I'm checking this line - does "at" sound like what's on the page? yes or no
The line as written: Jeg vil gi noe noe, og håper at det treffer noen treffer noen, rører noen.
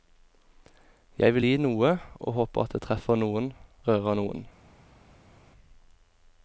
yes